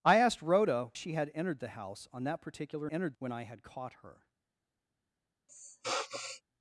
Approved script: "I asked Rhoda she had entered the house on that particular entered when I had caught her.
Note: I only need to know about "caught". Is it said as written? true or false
true